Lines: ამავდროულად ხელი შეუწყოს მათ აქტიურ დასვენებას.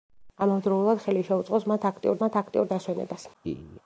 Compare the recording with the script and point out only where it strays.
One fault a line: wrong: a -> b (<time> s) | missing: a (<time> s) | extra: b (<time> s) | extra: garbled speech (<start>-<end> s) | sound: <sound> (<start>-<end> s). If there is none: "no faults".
extra: მათ აქტიურ (2.2 s)
sound: laugh (3.4-3.8 s)